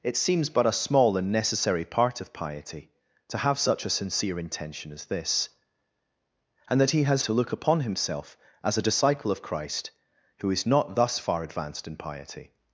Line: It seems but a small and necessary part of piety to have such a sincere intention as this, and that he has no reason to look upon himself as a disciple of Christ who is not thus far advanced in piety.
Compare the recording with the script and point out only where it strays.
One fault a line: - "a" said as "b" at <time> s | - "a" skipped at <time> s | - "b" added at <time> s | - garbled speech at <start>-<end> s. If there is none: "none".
- "no reason" skipped at 7.2 s